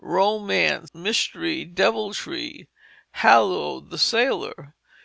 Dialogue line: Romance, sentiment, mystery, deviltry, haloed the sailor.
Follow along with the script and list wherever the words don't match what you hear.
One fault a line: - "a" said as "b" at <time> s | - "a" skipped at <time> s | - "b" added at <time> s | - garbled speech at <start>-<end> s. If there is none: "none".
- "sentiment" skipped at 0.9 s